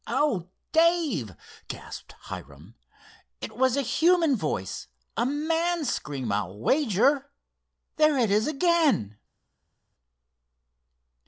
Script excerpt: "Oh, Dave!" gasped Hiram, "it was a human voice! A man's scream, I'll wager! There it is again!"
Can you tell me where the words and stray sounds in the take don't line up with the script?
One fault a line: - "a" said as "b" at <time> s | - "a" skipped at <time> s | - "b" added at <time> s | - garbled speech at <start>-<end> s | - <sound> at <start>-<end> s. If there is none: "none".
none